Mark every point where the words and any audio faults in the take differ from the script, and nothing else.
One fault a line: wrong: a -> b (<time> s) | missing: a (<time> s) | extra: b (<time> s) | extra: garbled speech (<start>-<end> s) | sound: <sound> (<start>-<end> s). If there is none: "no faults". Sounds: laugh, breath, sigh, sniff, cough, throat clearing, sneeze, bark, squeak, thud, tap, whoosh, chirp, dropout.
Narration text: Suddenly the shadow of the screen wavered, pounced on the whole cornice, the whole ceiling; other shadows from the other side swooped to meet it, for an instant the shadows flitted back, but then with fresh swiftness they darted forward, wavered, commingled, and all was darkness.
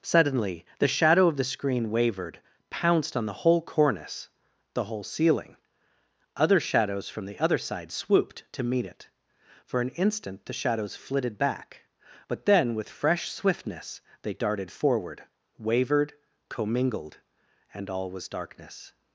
no faults